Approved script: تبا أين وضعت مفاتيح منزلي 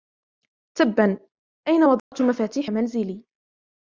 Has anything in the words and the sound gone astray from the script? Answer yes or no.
yes